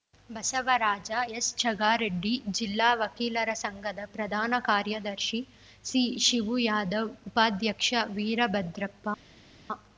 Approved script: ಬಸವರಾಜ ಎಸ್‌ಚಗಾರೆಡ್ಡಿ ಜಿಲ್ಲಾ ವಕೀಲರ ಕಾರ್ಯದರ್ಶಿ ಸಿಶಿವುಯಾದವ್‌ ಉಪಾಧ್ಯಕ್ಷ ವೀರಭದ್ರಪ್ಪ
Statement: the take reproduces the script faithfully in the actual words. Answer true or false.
false